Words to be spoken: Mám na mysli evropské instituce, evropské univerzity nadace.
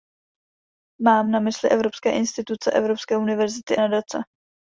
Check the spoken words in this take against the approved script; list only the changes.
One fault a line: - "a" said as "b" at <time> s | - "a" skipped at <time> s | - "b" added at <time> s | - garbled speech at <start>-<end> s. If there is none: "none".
none